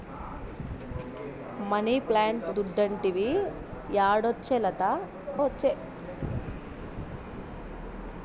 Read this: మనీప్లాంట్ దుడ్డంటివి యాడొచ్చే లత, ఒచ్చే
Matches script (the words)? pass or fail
pass